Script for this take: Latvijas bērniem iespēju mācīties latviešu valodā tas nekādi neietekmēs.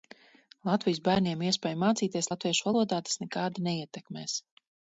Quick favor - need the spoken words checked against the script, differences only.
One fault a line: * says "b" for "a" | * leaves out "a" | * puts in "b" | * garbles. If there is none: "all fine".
all fine